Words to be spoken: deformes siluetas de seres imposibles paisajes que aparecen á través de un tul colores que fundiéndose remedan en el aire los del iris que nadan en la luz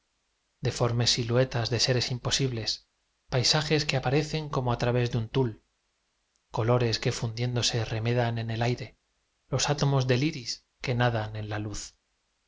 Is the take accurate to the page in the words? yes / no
no